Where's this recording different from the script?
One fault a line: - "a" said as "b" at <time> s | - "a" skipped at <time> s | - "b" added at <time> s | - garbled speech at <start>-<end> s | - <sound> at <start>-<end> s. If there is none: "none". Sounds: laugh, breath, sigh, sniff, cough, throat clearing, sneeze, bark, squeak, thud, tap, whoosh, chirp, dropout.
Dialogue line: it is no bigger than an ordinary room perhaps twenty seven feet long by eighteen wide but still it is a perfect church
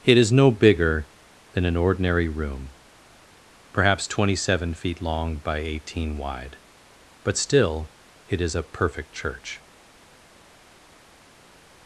none